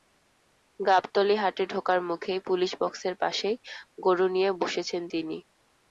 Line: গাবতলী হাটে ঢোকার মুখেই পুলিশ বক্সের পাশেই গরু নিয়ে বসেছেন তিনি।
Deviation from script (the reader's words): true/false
false